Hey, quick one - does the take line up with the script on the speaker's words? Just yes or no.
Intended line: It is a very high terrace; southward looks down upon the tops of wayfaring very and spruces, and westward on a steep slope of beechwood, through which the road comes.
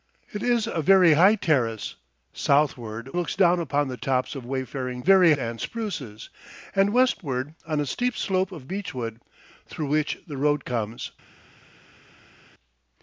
yes